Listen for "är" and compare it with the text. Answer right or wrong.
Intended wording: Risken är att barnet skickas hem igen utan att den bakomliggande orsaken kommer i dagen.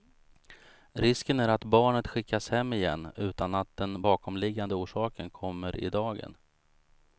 right